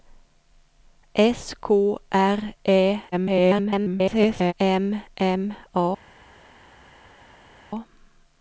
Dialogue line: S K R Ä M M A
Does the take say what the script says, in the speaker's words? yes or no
no